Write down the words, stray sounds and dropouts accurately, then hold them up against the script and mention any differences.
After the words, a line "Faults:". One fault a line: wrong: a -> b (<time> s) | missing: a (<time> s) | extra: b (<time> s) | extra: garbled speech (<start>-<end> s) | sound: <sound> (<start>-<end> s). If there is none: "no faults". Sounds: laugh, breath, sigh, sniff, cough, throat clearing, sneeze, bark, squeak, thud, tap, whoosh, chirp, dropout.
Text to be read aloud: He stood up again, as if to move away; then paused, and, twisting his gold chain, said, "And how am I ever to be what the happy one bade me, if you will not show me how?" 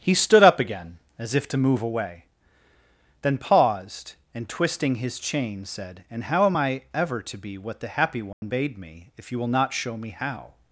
He stood up again, as if to move away; then paused, and, twisting his chain, said, "And how am I ever to be what the happy one bade me, if you will not show me how?"
Faults:
missing: gold (5.2 s)
sound: dropout (8.3-8.4 s)